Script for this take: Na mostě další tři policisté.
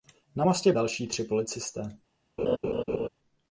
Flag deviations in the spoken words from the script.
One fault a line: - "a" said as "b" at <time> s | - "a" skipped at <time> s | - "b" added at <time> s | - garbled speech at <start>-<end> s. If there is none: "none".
none